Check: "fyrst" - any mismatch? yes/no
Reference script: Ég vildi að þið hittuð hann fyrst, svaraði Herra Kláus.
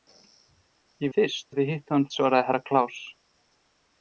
yes